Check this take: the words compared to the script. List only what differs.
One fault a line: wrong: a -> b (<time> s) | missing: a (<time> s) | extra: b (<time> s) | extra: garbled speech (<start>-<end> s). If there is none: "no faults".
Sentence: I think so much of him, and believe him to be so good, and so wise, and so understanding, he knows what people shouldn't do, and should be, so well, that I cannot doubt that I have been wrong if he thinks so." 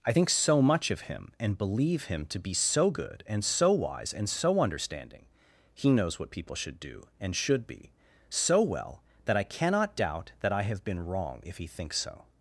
wrong: shouldn't -> should (6.5 s)